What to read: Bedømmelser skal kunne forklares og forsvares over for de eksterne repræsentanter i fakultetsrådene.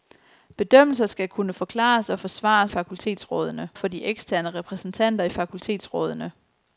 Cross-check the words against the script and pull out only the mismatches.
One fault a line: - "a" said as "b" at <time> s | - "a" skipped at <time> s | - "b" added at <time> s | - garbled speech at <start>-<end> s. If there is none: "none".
- "over" said as "fakultetsrådene" at 2.7 s